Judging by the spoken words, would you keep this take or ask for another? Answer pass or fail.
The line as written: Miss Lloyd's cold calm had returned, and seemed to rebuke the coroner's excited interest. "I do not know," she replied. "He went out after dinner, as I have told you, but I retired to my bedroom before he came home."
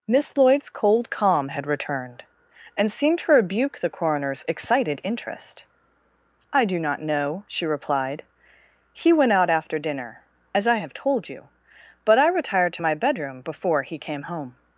pass